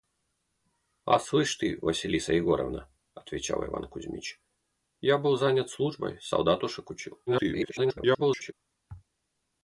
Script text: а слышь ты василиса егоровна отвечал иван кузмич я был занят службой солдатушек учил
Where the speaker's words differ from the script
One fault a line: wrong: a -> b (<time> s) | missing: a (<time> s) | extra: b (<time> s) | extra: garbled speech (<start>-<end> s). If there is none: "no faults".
extra: garbled speech (7.3-8.5 s)